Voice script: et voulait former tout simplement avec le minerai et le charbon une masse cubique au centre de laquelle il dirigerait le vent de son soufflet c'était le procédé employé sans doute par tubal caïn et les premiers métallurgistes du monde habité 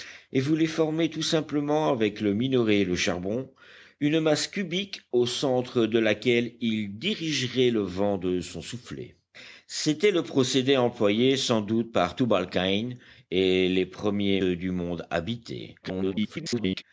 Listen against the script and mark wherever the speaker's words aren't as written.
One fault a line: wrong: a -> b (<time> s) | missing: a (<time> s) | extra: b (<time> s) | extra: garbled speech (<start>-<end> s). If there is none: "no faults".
missing: métallurgistes (14.4 s)
extra: garbled speech (15.8-16.8 s)